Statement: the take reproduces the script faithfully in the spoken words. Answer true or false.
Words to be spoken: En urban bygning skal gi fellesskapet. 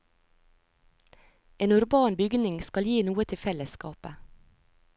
false